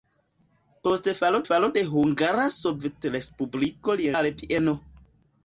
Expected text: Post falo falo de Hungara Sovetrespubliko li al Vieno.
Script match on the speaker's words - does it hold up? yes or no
yes